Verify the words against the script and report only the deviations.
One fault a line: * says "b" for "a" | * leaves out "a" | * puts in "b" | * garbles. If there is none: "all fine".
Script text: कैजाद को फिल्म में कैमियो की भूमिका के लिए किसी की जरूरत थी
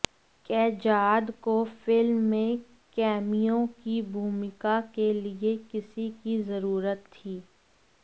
all fine